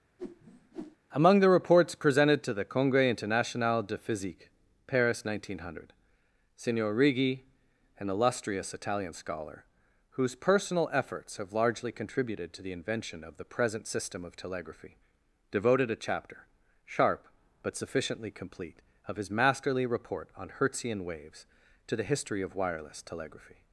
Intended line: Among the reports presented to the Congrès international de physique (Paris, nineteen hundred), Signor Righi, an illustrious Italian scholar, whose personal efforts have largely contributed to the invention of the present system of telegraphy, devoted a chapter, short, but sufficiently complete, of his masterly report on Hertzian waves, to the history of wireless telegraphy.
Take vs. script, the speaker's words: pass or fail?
fail